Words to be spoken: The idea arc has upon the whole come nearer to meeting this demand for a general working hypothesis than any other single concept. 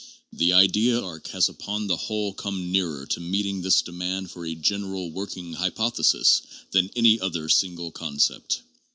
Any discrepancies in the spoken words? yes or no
no